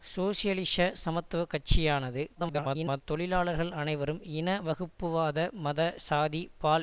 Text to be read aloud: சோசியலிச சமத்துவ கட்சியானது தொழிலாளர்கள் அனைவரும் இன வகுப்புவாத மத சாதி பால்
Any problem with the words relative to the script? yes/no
yes